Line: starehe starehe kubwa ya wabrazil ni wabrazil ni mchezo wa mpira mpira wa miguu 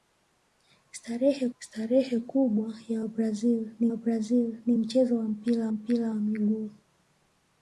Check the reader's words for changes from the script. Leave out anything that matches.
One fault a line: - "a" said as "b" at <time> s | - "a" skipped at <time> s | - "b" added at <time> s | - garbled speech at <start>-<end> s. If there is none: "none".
none